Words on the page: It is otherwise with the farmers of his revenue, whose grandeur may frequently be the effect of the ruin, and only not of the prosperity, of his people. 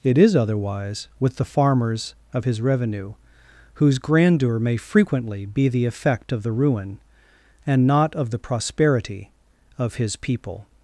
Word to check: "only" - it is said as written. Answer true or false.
false